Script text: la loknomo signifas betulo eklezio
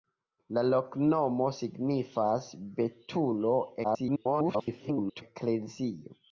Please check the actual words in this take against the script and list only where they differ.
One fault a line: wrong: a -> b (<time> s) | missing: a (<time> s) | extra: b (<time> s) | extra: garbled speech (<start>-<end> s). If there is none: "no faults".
extra: garbled speech (3.8-5.2 s)